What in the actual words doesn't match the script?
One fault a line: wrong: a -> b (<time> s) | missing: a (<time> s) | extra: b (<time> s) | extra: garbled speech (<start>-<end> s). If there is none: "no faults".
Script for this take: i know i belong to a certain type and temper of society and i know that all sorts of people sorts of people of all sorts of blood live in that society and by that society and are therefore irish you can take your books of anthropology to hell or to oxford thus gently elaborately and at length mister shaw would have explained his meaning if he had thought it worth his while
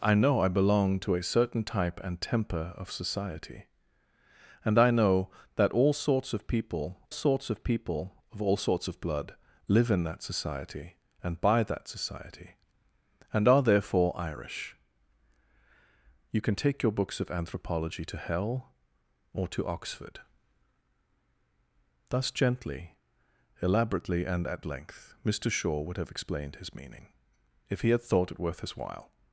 no faults